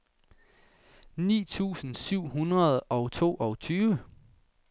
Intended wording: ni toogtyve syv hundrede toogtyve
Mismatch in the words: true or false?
true